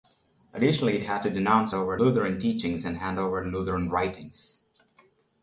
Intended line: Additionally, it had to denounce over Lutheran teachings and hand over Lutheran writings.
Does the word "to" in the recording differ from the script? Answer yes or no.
no